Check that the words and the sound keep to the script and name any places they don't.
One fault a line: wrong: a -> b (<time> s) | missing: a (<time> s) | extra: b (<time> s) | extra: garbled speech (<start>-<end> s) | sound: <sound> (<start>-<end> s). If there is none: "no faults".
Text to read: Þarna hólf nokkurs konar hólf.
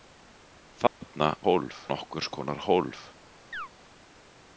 sound: dropout (0.9-1.0 s)
sound: chirp (3.5-3.7 s)